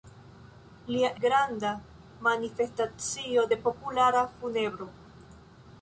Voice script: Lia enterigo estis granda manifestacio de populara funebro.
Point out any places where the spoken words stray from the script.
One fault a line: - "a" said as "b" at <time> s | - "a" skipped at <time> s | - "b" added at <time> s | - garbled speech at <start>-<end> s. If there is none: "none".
- "enterigo estis" skipped at 1.1 s